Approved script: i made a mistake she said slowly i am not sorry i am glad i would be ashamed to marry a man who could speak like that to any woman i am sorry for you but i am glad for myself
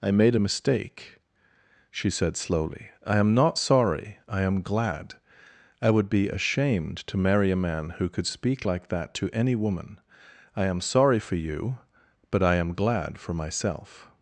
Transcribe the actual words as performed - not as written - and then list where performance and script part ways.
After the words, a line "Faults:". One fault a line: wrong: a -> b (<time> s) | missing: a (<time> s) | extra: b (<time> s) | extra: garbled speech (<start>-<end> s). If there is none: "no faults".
i made a mistake she said slowly i am not sorry i am glad i would be ashamed to marry a man who could speak like that to any woman i am sorry for you but i am glad for myself
Faults:
no faults